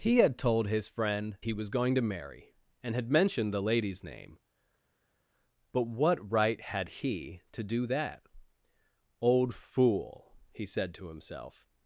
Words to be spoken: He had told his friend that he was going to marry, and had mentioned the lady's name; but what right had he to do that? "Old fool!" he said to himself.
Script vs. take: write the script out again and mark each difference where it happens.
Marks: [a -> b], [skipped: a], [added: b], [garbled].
He had told his friend [skipped: that] he was going to marry, and had mentioned the lady's name; but what right had he to do that? "Old fool!" he said to himself.